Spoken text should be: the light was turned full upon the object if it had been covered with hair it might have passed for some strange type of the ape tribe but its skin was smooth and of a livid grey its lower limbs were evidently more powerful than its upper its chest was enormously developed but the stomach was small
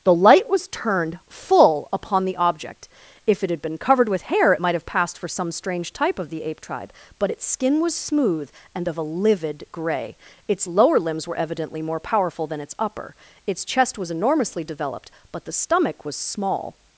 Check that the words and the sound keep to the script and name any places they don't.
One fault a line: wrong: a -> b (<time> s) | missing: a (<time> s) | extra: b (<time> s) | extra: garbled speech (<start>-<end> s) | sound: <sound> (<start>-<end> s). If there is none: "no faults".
no faults